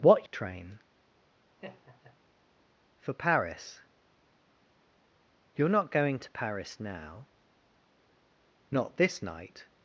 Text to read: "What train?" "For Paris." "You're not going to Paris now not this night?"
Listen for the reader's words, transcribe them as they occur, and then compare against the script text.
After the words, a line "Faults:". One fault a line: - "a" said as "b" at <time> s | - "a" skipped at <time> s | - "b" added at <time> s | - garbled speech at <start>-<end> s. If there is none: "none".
"What train?" "For Paris." "You're not going to Paris now not this night?"
Faults:
none